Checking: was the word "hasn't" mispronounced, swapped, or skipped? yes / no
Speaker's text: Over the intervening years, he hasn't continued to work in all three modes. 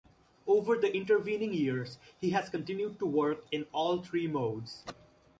yes